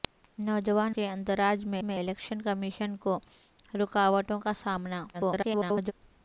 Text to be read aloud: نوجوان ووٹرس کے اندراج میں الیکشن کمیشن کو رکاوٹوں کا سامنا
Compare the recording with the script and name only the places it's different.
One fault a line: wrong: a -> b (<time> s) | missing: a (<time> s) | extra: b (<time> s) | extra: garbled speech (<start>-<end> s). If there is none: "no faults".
missing: ووٹرس (0.9 s)
extra: میں (1.8 s)
extra: garbled speech (5.1-5.9 s)